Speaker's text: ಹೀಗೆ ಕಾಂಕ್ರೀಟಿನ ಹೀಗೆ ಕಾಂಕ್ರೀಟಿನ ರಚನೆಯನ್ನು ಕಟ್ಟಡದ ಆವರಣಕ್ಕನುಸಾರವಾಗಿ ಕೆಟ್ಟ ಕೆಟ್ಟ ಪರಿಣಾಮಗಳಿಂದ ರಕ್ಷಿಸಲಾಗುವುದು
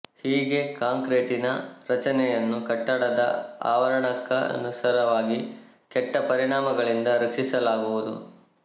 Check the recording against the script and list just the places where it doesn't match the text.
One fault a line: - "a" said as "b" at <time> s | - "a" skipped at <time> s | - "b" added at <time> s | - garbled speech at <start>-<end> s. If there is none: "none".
- "ಹೀಗೆ ಕಾಂಕ್ರೀಟಿನ" skipped at 1.5 s
- "ಕೆಟ್ಟ" skipped at 6.2 s